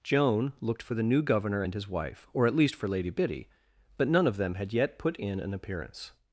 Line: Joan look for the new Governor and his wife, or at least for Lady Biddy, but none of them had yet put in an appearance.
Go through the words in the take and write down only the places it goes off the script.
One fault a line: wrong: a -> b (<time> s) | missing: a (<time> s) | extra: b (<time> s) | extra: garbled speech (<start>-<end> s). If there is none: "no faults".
wrong: look -> looked (0.6 s)